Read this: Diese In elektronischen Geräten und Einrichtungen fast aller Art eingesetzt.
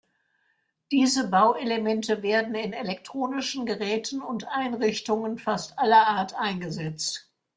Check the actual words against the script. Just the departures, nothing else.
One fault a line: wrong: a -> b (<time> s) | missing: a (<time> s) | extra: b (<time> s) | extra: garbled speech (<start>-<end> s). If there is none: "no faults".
extra: Bauelemente werden (1.3 s)